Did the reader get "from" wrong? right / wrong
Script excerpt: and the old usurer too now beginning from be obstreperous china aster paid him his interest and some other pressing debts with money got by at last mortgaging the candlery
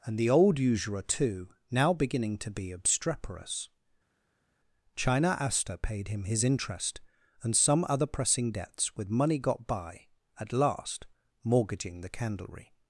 wrong